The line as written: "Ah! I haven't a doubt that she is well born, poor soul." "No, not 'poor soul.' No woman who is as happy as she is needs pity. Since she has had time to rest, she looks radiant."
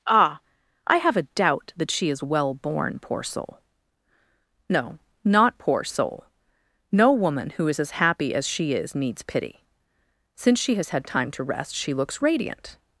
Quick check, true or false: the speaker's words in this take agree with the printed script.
false